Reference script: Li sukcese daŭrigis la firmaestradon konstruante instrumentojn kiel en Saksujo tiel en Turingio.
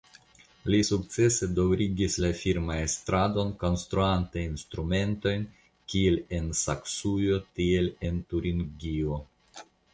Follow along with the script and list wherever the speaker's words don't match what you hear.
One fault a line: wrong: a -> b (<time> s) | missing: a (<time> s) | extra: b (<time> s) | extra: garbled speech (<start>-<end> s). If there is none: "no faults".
no faults